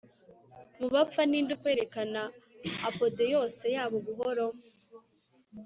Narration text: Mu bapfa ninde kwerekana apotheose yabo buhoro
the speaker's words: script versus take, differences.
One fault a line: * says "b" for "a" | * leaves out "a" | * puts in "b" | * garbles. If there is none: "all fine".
all fine